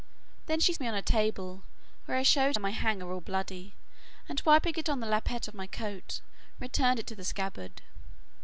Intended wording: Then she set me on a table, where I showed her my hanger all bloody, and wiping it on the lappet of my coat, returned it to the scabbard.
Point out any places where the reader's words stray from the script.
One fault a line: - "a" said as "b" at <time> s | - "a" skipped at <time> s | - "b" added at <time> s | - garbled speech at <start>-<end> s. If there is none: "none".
- "set" skipped at 0.7 s
- "her" skipped at 2.6 s